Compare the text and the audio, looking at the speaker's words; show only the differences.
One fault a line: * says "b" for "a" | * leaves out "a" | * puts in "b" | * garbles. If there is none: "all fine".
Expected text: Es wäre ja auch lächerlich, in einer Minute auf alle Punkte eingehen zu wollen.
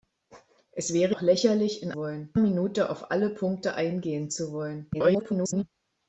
* leaves out "ja"
* says "wollen" for "einer"
* garbles